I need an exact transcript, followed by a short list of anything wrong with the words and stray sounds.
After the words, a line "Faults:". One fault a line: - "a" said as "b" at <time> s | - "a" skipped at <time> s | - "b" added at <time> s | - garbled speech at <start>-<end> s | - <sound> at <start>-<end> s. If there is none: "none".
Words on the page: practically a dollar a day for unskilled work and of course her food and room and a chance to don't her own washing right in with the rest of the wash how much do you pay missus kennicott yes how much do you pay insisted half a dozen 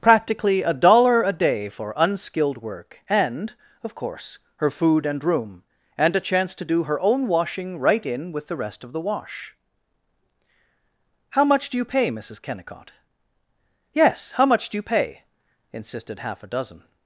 practically a dollar a day for unskilled work and of course her food and room and a chance to do her own washing right in with the rest of the wash how much do you pay missus kennicott yes how much do you pay insisted half a dozen
Faults:
- "don't" said as "do" at 6.7 s